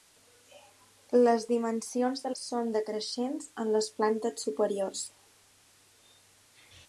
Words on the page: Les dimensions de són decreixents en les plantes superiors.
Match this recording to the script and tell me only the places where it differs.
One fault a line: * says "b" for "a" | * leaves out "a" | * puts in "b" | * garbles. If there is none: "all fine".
all fine